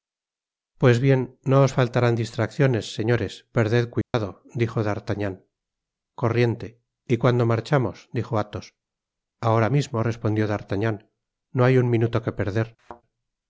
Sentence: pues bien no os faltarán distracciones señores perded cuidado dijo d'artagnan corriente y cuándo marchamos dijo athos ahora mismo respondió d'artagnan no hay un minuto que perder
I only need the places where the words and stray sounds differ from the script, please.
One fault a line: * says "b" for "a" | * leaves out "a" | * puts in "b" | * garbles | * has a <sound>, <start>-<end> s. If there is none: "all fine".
* has a dropout, 4.0-4.1 s
* has a thud, 12.8-13.0 s